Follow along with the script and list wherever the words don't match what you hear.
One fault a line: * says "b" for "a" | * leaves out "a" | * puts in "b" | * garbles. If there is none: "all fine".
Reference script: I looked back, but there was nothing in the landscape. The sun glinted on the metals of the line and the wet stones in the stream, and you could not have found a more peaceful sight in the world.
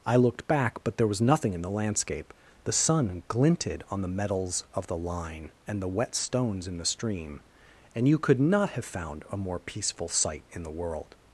all fine